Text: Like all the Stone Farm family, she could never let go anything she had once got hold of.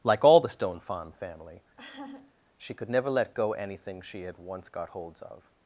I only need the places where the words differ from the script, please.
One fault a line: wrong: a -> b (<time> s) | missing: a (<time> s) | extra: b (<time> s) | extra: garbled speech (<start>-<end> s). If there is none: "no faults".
wrong: hold -> holds (4.9 s)